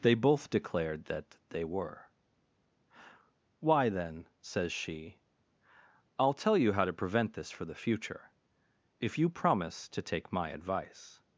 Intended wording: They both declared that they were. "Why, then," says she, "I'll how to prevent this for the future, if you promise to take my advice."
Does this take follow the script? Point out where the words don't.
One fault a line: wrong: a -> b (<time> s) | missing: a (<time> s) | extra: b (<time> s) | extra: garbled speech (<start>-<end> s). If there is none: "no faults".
extra: tell you (6.3 s)